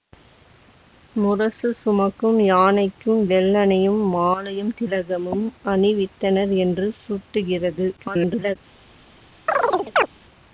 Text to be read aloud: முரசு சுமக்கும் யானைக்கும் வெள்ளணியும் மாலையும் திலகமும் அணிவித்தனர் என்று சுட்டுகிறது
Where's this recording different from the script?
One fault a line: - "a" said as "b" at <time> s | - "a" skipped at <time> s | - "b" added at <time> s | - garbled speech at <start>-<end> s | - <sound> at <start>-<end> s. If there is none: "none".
- garbled speech at 8.0-8.6 s
- chirp at 9.5-10.1 s